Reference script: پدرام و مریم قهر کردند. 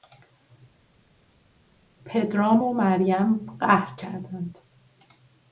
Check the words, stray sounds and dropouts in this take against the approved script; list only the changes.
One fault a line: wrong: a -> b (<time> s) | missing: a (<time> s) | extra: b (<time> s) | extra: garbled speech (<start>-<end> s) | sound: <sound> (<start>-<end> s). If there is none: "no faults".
no faults